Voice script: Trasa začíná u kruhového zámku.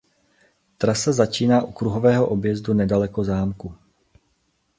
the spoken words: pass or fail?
fail